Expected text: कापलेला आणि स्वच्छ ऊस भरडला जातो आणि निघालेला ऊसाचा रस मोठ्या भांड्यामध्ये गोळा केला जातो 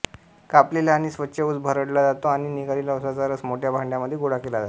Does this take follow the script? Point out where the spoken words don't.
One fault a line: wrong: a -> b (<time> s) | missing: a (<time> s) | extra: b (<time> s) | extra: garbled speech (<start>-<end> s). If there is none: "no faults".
no faults